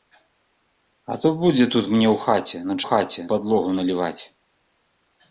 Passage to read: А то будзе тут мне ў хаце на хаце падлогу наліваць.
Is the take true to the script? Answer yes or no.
yes